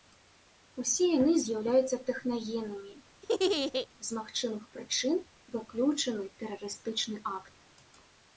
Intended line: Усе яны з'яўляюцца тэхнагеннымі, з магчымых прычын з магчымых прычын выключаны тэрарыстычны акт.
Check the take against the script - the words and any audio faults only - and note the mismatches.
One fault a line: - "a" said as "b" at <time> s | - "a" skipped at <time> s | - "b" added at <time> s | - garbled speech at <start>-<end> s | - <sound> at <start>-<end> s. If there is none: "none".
- laugh at 3.2-3.9 s
- "з магчымых прычын" skipped at 5.2 s